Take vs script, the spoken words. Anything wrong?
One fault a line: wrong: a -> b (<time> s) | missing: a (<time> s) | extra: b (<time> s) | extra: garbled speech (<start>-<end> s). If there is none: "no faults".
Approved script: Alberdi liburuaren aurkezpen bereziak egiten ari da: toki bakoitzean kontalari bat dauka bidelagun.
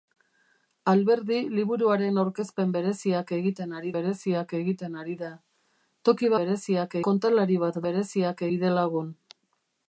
extra: bereziak egiten ari (4.0 s)
wrong: bakoitzean -> bereziak (6.4 s)
wrong: dauka -> bereziak (7.9 s)